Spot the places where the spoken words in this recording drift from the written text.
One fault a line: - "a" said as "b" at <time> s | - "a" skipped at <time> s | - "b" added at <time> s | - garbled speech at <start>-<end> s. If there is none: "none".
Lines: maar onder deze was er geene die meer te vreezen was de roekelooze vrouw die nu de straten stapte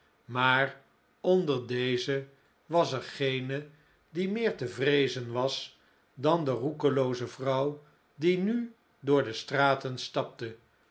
- "dan" added at 6.1 s
- "door" added at 9.0 s